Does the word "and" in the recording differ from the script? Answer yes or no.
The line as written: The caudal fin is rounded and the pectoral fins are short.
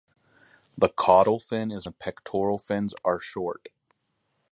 yes